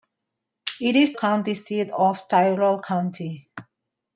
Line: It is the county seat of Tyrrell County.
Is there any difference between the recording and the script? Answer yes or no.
yes